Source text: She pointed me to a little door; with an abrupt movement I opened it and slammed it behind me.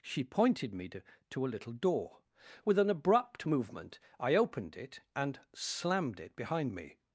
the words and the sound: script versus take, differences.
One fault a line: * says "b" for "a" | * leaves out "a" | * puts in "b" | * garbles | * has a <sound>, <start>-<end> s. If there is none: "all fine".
* puts in "to"